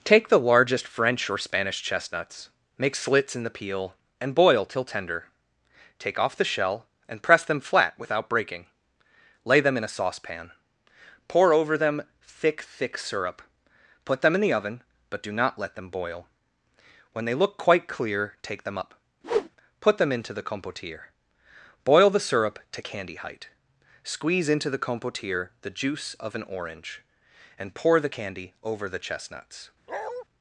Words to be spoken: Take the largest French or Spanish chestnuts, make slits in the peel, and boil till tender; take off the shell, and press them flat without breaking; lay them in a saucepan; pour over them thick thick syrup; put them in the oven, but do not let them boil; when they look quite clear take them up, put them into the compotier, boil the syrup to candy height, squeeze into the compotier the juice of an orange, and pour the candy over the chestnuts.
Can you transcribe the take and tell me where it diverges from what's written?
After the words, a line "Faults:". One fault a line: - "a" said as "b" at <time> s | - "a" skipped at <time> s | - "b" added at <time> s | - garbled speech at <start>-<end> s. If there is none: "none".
Take the largest French or Spanish chestnuts, make slits in the peel, and boil till tender; take off the shell, and press them flat without breaking; lay them in a saucepan; pour over them thick thick syrup; put them in the oven, but do not let them boil; when they look quite clear take them up, put them into the compotier, boil the syrup to candy height, squeeze into the compotier the juice of an orange, and pour the candy over the chestnuts.
Faults:
none